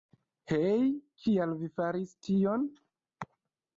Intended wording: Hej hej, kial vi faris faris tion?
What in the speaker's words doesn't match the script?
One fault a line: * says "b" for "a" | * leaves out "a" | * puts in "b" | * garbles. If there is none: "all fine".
* leaves out "hej"
* leaves out "faris"